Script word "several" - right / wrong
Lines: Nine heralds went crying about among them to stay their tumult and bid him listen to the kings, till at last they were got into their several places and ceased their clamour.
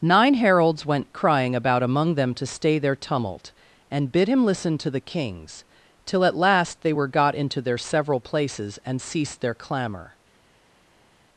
right